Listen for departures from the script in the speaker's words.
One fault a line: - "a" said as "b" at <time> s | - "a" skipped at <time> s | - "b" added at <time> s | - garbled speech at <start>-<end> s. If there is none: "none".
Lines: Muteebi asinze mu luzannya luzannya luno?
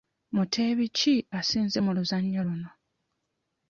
- "ki" added at 1.0 s
- "luzannya" skipped at 2.4 s